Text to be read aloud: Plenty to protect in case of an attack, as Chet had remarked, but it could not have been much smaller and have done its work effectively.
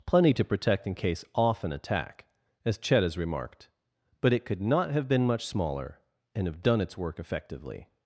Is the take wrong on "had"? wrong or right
wrong